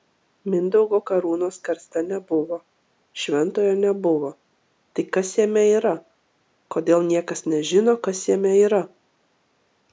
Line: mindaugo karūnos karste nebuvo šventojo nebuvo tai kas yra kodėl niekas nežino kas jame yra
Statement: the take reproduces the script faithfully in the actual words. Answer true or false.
false